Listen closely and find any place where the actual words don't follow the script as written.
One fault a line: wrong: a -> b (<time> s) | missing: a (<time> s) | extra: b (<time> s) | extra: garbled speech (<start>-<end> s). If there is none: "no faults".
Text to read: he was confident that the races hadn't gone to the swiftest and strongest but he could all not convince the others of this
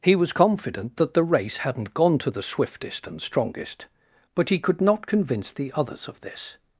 wrong: races -> race (1.2 s)
missing: all (4.8 s)